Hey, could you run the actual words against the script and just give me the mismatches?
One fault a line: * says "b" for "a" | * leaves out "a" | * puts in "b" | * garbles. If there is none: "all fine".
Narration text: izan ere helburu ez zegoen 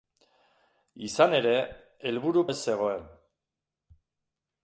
all fine